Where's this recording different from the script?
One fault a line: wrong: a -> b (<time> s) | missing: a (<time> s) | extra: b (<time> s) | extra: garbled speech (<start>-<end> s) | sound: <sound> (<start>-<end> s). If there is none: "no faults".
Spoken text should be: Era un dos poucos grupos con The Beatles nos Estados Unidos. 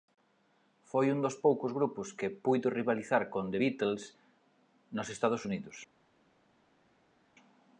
wrong: Era -> Foi (0.9 s)
extra: que puido rivalizar (2.2 s)